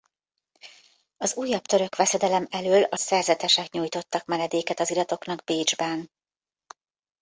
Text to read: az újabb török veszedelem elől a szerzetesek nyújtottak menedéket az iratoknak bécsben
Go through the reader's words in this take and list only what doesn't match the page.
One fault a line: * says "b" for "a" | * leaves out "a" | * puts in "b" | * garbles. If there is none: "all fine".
all fine